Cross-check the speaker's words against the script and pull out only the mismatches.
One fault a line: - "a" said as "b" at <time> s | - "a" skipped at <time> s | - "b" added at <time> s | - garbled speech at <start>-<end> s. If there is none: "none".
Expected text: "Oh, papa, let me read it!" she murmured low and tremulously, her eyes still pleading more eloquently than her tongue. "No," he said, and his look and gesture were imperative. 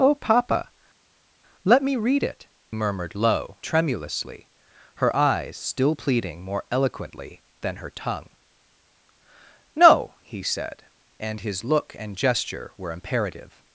- "she" skipped at 2.5 s
- "and" skipped at 3.6 s